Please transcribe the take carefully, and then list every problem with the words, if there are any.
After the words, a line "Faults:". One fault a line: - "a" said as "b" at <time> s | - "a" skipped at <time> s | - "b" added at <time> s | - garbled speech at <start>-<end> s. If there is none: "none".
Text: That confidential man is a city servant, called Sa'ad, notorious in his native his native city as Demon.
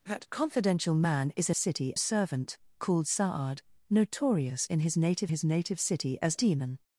That confidential man is a city servant, called Sa'ad, notorious in his native his native city as Demon.
Faults:
none